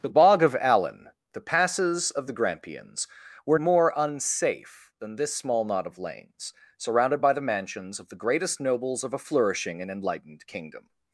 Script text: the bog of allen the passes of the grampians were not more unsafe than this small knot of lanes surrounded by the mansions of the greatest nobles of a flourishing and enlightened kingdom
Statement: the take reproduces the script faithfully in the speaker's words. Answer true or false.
false